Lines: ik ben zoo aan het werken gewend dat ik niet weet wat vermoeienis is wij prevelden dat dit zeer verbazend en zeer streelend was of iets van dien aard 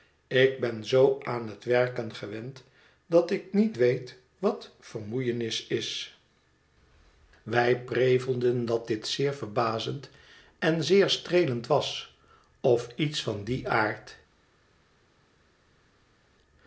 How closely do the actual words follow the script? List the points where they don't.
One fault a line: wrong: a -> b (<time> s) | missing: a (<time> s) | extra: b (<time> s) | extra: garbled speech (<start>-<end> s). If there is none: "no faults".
no faults